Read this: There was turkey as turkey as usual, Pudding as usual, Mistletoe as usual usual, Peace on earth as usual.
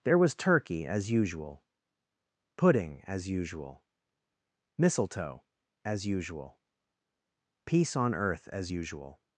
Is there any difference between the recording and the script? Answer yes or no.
yes